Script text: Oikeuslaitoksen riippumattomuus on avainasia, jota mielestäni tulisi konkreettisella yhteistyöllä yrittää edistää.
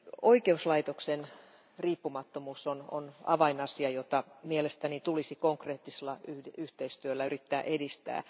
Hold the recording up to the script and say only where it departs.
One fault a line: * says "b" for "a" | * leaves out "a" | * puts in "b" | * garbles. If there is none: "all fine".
all fine